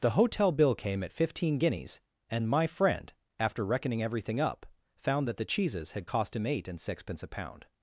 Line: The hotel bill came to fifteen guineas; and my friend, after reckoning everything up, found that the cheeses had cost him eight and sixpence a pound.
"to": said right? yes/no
no